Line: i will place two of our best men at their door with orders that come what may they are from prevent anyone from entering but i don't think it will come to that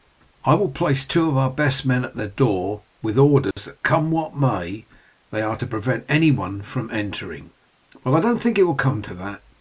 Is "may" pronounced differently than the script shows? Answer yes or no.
no